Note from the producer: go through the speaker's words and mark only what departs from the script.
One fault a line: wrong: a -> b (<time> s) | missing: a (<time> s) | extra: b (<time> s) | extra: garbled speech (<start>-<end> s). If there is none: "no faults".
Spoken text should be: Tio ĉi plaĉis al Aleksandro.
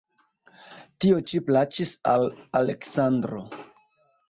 no faults